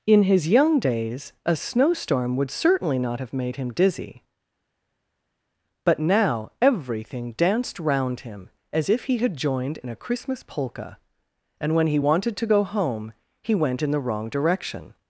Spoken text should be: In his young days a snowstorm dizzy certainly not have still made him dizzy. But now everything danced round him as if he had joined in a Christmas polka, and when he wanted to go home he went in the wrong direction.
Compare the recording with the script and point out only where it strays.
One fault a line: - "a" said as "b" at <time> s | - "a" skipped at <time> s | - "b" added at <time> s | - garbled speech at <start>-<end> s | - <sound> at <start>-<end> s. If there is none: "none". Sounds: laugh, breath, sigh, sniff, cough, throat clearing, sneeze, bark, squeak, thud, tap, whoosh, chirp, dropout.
- "dizzy" said as "would" at 2.4 s
- "still" skipped at 3.3 s